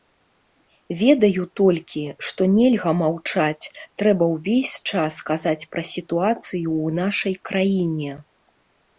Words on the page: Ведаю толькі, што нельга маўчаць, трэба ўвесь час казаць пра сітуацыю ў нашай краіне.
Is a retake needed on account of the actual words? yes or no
no